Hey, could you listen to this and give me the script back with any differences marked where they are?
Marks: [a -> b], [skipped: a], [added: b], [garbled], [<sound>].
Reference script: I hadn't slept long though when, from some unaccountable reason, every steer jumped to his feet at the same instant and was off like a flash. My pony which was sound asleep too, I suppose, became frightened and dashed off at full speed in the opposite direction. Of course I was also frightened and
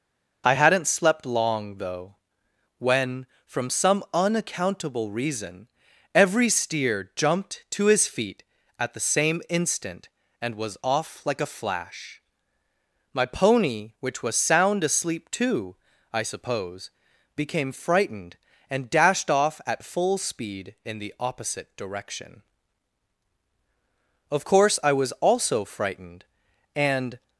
I hadn't slept long though when, from some unaccountable reason, every steer jumped to his feet at the same instant and was off like a flash. My pony which was sound asleep too, I suppose, became frightened and dashed off at full speed in the opposite direction. Of course I was also frightened and